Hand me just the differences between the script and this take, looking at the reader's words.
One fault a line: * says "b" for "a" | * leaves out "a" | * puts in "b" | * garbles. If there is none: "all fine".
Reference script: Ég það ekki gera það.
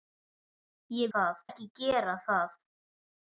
all fine